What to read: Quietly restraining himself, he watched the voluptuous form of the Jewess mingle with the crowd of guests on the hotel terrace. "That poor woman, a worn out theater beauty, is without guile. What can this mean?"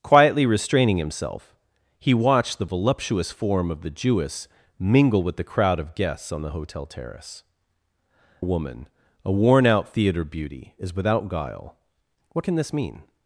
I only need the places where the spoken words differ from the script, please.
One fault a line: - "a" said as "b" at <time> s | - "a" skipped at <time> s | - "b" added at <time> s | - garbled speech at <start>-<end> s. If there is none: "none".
- "That poor" skipped at 7.4 s